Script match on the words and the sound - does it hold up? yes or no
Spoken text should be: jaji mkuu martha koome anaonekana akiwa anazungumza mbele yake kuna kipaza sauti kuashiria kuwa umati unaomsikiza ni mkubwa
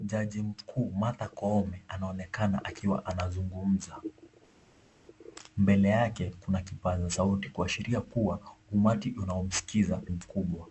no